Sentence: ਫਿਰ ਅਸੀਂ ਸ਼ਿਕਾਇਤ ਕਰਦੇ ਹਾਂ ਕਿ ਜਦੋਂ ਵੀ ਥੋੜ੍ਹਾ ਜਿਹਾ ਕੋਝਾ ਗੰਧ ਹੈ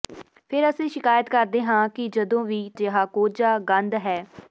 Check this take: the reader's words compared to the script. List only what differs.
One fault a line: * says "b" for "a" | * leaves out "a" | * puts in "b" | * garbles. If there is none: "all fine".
* leaves out "ਥੋੜ੍ਹਾ"